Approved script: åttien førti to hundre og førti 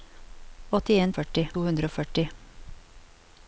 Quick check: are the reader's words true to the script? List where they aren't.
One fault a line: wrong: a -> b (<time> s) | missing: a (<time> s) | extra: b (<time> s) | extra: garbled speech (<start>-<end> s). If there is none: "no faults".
no faults